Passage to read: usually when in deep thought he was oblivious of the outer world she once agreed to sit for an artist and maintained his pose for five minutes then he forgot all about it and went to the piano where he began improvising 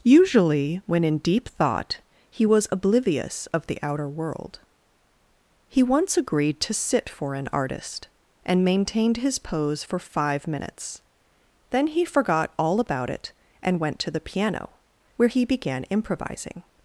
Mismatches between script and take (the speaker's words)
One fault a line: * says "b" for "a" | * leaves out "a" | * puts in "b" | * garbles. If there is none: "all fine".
* says "he" for "she"